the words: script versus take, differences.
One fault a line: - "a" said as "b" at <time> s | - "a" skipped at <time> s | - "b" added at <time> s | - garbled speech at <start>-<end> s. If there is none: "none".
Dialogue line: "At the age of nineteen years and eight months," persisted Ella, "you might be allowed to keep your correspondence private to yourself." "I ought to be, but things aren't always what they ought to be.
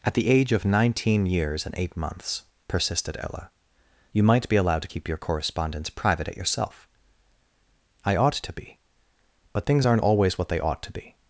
- "to" said as "at" at 6.3 s